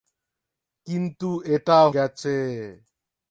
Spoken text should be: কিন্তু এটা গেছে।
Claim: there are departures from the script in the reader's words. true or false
false